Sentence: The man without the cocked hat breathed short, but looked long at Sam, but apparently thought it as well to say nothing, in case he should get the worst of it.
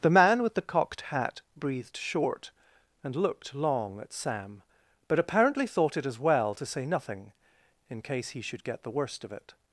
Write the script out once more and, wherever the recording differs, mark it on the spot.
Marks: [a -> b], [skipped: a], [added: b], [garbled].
The man [without -> with] the cocked hat breathed short, [but -> and] looked long at Sam, but apparently thought it as well to say nothing, in case he should get the worst of it.